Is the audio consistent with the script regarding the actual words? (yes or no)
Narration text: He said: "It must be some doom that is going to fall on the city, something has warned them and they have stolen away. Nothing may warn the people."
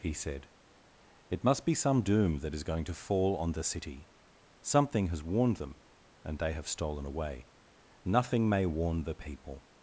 yes